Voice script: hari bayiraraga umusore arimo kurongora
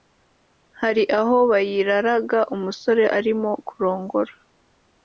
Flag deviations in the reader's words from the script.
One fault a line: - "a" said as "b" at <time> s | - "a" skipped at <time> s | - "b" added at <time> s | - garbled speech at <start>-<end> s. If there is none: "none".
- "aho" added at 1.2 s